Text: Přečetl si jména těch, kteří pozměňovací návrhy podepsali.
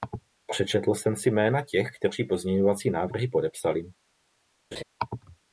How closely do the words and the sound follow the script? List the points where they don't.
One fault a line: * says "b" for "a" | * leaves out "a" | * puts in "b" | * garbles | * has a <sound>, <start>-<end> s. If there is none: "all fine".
* puts in "jsem"
* has a laugh, 4.7-4.8 s